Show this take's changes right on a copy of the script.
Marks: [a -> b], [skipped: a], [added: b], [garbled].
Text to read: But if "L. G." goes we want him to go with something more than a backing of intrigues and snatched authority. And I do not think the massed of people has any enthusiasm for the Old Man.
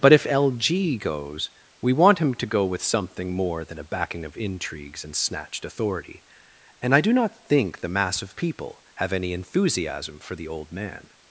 But if "L. G." goes we want him to go with something more than a backing of intrigues and snatched authority. And I do not think the [massed -> mass] of people [has -> have] any enthusiasm for the Old Man.